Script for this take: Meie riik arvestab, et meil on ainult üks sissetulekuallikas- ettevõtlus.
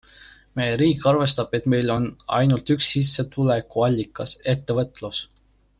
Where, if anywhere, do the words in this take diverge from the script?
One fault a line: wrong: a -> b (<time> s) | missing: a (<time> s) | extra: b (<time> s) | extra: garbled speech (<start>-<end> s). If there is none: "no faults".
no faults